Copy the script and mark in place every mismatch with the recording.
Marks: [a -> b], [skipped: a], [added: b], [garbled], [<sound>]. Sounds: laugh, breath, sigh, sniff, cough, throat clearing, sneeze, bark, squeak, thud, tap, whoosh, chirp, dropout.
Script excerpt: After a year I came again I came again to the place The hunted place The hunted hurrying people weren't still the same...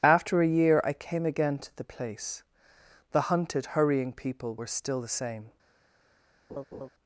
After a year I came again [skipped: I came again] to the place The hunted [skipped: place The hunted] hurrying people [weren't -> were] still the same... [laugh]